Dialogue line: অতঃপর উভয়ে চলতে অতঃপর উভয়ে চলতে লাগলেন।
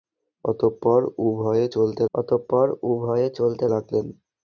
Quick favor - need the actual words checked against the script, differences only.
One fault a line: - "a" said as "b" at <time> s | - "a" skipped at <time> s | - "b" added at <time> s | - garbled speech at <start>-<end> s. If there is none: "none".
none